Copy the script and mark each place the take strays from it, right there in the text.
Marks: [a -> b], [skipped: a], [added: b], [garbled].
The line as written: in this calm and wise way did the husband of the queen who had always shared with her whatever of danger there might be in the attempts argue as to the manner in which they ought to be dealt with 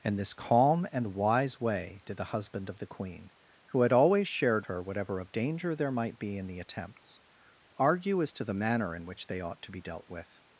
in this calm and wise way did the husband of the queen who had always shared [skipped: with] her whatever of danger there might be in the attempts argue as to the manner in which they ought to be dealt with